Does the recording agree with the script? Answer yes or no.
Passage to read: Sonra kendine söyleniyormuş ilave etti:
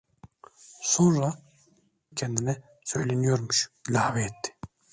yes